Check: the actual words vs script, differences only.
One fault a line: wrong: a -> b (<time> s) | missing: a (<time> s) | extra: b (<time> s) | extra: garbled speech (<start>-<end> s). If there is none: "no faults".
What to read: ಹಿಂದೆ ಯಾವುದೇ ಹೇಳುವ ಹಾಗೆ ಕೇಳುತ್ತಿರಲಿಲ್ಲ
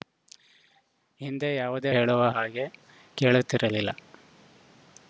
no faults